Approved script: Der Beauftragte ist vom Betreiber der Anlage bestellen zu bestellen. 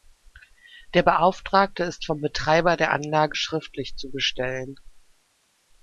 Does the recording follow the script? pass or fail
fail